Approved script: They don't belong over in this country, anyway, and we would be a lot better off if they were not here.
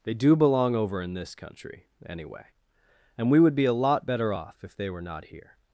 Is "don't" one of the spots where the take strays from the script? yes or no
yes